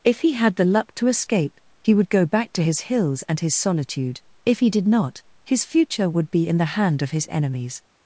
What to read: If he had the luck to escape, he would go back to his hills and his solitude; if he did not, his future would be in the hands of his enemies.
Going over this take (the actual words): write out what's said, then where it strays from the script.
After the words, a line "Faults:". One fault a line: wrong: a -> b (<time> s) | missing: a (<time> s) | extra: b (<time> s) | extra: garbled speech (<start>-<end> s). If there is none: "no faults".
If he had the luck to escape, he would go back to his hills and his solitude; if he did not, his future would be in the hand of his enemies.
Faults:
wrong: hands -> hand (6.8 s)